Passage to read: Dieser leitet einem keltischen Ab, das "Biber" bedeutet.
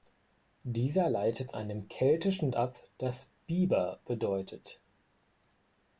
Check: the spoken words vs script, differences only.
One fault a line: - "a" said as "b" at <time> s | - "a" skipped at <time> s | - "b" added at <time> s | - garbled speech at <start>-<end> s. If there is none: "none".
none